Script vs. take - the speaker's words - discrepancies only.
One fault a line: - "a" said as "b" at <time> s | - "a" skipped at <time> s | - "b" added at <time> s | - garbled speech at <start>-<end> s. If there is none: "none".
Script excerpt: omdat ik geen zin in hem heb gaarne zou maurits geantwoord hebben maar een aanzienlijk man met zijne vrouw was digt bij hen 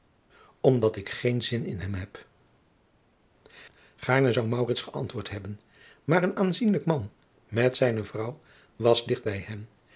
none